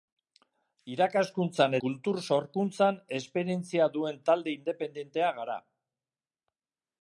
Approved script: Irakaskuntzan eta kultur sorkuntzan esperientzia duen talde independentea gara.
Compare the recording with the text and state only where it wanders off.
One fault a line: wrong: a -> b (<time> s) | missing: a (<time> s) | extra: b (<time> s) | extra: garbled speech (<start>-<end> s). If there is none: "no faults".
missing: eta (1.8 s)